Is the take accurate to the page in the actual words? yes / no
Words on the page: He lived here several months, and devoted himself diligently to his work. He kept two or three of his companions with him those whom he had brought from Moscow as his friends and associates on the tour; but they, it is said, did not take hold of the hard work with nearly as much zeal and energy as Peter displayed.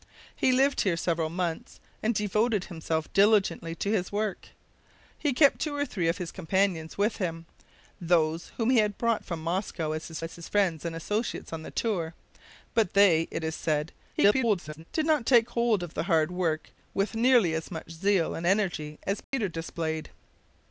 no